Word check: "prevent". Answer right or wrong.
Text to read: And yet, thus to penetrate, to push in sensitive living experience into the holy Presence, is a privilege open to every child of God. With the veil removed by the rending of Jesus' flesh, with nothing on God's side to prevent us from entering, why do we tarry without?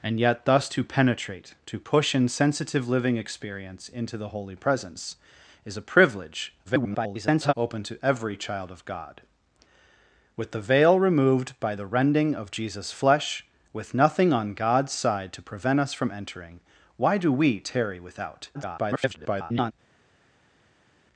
right